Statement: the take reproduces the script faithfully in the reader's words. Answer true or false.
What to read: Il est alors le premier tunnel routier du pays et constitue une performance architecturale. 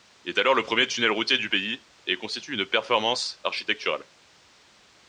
true